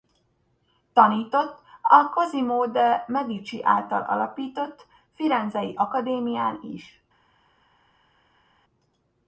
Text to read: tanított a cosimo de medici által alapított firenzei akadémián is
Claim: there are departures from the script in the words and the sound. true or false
false